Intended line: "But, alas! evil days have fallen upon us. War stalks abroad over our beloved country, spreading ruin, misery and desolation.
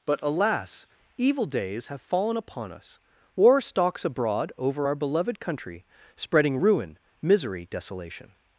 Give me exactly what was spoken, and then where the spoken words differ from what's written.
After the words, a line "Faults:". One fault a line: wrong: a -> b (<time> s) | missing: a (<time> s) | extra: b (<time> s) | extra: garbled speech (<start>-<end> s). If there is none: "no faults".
"But, alas! evil days have fallen upon us. War stalks abroad over our beloved country, spreading ruin, misery desolation.
Faults:
missing: and (7.7 s)